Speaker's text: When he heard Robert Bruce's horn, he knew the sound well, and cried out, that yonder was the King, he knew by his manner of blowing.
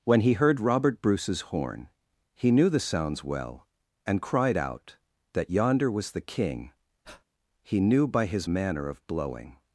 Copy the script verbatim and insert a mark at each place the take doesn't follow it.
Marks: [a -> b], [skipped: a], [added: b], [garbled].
When he heard Robert Bruce's horn, he knew the [sound -> sounds] well, and cried out, that yonder was the King, he knew by his manner of blowing.